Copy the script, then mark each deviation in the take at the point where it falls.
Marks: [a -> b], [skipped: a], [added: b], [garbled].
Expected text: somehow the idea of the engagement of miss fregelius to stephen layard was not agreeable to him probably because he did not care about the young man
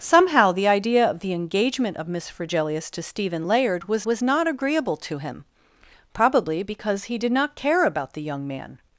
somehow the idea of the engagement of miss fregelius to stephen layard was [added: was] not agreeable to him probably because he did not care about the young man